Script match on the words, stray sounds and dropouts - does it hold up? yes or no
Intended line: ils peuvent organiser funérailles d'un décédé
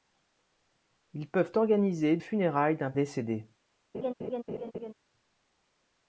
no